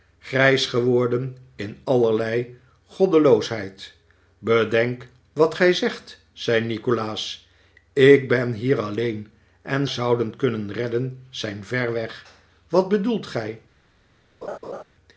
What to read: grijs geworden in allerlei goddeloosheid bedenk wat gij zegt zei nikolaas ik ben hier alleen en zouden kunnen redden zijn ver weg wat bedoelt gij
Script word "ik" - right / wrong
right